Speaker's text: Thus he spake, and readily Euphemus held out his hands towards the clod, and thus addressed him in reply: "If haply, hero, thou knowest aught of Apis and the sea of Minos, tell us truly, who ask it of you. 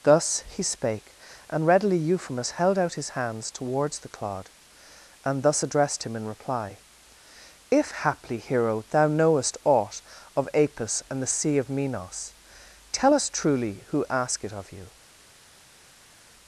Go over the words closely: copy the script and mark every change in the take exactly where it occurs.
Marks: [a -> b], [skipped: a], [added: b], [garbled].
Thus he spake, and readily Euphemus held out his hands towards the clod, and thus addressed him in reply: "If haply, hero, thou knowest aught of Apis and the sea of Minos, tell us truly, who ask it of you.